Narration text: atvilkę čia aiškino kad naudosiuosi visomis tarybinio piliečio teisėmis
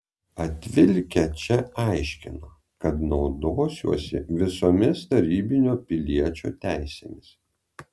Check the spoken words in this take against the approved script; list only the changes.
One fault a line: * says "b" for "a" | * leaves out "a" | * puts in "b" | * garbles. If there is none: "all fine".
all fine